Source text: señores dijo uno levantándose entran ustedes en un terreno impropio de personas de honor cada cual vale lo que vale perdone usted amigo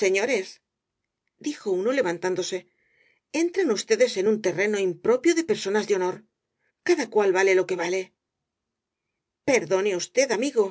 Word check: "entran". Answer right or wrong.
right